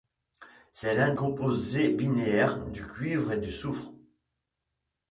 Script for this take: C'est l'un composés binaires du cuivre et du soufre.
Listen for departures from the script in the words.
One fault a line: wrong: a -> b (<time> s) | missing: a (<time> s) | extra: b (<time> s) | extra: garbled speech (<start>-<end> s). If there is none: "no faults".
no faults